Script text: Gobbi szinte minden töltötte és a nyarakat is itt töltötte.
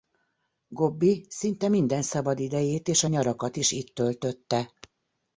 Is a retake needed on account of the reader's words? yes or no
yes